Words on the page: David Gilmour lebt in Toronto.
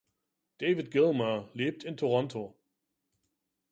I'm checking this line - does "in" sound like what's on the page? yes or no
yes